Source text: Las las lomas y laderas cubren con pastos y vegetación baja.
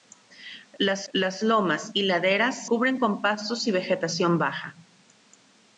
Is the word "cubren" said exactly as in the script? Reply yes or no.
yes